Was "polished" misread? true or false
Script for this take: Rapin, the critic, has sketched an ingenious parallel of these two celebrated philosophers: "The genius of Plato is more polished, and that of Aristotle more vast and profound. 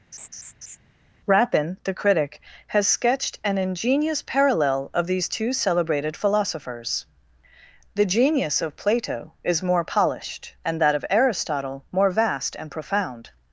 false